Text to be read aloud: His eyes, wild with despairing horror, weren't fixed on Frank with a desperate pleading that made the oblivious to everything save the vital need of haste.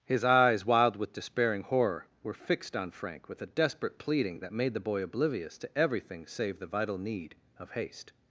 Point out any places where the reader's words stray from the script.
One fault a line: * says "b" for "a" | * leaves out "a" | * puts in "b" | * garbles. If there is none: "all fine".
* says "were" for "weren't"
* puts in "boy"